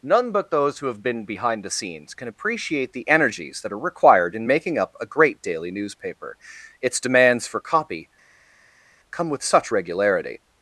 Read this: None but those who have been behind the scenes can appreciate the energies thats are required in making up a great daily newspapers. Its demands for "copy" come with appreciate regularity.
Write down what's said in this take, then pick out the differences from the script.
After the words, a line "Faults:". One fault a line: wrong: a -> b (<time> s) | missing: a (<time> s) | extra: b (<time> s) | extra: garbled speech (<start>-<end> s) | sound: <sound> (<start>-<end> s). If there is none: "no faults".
None but those who have been behind the scenes can appreciate the energies that are required in making up a great daily newspaper. Its demands for "copy" come with such regularity.
Faults:
wrong: thats -> that (3.6 s)
wrong: newspapers -> newspaper (5.7 s)
wrong: appreciate -> such (9.4 s)